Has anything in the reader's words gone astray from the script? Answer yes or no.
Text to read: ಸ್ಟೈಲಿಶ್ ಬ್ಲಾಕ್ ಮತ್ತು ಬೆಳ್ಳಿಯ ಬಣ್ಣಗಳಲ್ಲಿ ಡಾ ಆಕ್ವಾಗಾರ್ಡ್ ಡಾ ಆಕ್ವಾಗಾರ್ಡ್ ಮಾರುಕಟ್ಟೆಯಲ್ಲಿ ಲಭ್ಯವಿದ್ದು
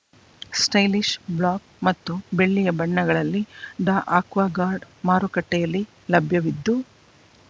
yes